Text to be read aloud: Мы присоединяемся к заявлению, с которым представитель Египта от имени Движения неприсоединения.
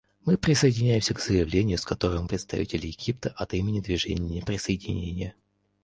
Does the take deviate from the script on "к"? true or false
false